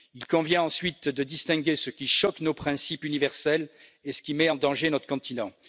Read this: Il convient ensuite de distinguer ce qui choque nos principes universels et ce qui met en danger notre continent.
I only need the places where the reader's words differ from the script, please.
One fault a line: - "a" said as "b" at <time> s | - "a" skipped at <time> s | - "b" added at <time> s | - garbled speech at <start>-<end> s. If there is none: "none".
none